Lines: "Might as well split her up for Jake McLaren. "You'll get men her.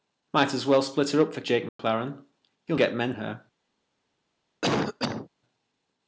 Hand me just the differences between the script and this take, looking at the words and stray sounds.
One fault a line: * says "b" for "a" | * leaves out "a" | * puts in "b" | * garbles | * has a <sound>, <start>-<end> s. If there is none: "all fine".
* has a dropout, 1.7-1.8 s
* has a cough, 4.6-5.3 s